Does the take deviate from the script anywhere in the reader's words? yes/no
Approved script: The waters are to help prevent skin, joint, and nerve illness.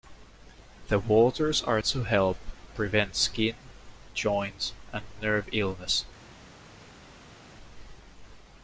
no